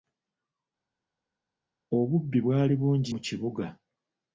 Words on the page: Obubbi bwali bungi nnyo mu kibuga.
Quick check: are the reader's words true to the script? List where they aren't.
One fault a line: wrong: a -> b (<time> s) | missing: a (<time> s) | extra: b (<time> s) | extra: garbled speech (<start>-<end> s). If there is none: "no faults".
missing: nnyo (3.1 s)